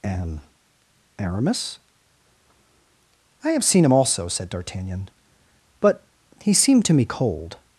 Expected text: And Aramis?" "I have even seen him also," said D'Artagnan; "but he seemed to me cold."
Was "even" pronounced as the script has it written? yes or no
no